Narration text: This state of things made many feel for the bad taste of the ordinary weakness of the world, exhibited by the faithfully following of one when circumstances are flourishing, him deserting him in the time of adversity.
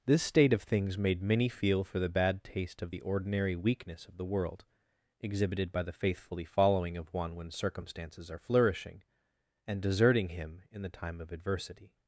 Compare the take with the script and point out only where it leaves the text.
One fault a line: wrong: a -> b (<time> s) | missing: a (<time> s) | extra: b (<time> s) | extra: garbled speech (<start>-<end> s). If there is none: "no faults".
wrong: him -> and (9.7 s)